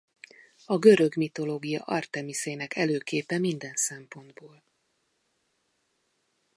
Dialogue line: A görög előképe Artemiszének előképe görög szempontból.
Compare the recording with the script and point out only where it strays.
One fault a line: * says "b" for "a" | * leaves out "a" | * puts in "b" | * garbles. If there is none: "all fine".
* says "mitológia" for "előképe"
* says "minden" for "görög"